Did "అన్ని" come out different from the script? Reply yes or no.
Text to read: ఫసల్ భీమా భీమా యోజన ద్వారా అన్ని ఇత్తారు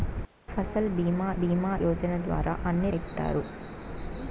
no